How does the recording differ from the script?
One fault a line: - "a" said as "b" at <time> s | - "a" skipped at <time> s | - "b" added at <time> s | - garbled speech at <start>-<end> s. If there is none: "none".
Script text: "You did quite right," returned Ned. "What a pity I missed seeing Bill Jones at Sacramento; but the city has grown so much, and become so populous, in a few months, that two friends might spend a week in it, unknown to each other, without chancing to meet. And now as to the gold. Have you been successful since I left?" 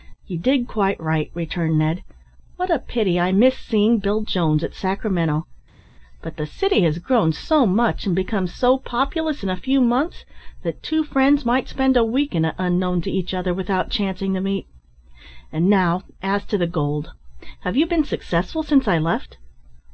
none